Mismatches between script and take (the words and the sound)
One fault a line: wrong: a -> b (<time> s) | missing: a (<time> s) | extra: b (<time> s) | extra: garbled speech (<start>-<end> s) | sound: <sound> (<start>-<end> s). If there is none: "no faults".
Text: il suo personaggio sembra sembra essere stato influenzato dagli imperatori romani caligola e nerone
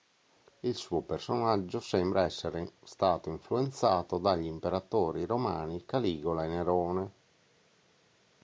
missing: sembra (2.2 s)